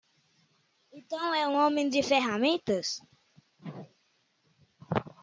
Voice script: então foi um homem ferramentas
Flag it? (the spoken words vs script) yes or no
yes